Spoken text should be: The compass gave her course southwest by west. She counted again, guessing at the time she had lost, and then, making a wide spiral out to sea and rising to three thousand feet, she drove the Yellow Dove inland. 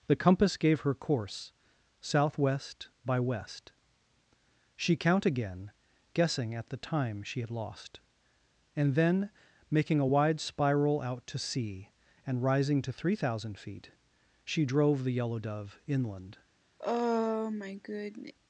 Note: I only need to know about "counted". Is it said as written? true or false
false